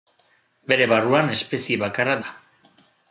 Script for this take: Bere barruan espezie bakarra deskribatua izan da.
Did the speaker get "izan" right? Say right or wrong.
wrong